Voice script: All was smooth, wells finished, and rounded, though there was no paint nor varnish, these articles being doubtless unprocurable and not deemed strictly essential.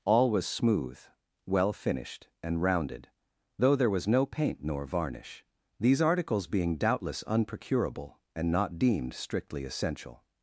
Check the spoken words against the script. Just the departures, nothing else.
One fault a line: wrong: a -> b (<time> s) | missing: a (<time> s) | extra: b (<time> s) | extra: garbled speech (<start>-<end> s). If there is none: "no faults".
wrong: wells -> well (1.4 s)